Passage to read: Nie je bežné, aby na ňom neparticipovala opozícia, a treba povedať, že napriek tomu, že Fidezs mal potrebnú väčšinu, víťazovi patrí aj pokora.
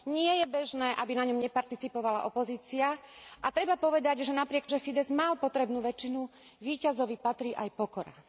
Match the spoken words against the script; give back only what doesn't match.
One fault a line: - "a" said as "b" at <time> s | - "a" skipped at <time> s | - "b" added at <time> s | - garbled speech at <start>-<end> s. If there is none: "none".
- "tomu" skipped at 4.7 s